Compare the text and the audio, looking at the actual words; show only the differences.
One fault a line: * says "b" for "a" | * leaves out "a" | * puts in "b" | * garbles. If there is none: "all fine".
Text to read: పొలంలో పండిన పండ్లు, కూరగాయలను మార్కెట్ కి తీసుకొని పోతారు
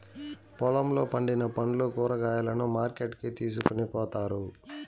all fine